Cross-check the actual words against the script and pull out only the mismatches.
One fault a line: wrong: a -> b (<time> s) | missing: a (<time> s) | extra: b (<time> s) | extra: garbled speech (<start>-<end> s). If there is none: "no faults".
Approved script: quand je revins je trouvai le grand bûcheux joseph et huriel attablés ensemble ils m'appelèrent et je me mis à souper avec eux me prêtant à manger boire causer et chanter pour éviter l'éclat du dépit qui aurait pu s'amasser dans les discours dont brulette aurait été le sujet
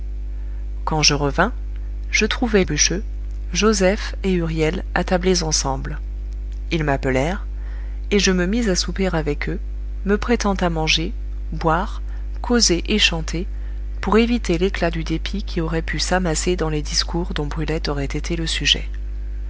missing: le grand (2.6 s)